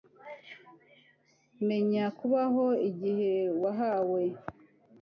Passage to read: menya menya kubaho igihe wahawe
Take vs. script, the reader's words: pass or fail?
fail